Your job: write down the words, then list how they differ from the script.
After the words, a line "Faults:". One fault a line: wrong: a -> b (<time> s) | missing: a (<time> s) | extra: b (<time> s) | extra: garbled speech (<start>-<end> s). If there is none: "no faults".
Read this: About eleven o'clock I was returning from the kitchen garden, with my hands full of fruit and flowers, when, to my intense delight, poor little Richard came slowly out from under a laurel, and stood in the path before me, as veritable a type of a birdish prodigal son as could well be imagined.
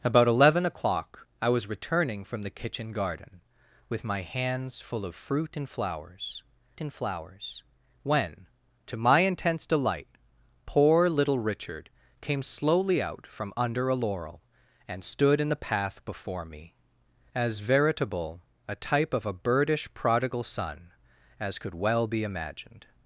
About eleven o'clock I was returning from the kitchen garden, with my hands full of fruit and flowers and flowers, when, to my intense delight, poor little Richard came slowly out from under a laurel, and stood in the path before me, as veritable a type of a birdish prodigal son as could well be imagined.
Faults:
extra: and flowers (6.8 s)